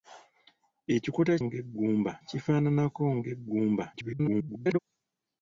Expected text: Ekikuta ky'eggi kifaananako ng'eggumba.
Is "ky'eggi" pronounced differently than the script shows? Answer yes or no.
yes